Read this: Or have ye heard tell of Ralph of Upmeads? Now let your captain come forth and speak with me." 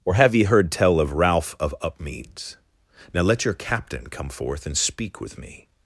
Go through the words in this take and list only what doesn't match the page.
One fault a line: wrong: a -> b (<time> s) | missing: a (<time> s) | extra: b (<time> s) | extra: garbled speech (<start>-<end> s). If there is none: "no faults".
no faults